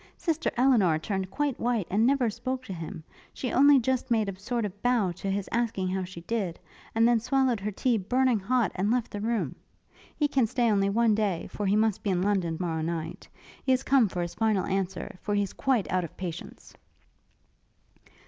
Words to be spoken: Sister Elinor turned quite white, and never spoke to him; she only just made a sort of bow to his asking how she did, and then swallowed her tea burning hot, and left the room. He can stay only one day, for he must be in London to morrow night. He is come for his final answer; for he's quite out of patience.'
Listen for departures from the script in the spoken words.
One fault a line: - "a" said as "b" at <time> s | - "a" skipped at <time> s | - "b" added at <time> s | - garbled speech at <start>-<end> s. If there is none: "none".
- "to" skipped at 12.6 s